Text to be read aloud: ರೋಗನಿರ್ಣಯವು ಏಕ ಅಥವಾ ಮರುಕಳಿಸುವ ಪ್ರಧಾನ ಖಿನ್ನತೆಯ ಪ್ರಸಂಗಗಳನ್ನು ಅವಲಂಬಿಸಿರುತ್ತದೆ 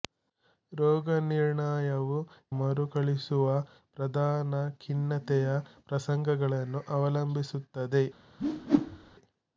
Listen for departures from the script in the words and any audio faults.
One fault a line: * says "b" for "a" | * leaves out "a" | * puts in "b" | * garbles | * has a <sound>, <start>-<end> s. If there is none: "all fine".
* leaves out "ಏಕ ಅಥವಾ"
* has a whoosh, 8.4-9.2 s